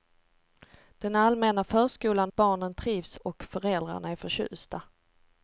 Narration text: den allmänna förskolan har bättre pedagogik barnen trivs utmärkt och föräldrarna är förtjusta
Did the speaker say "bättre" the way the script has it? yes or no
no